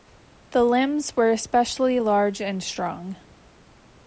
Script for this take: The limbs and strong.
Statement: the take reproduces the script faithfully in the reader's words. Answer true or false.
false